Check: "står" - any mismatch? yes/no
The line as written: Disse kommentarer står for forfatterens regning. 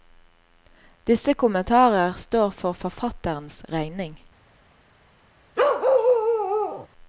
no